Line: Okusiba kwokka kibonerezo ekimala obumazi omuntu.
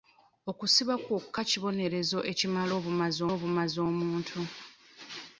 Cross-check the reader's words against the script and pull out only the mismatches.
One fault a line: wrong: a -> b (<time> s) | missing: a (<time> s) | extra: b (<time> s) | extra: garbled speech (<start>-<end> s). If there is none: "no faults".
extra: obumazi (3.3 s)